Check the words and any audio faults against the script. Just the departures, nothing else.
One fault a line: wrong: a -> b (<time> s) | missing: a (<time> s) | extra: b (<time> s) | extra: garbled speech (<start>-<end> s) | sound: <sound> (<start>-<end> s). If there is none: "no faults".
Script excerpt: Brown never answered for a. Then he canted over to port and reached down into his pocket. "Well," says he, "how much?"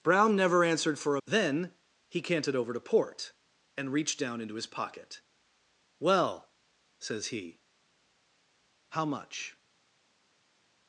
no faults